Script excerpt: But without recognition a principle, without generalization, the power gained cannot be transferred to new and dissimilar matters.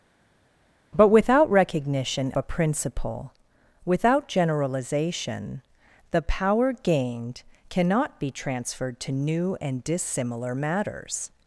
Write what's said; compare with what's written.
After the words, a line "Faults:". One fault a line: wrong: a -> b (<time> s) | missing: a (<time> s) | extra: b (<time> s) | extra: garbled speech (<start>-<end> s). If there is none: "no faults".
But without recognition a principle, without generalization, the power gained cannot be transferred to new and dissimilar matters.
Faults:
no faults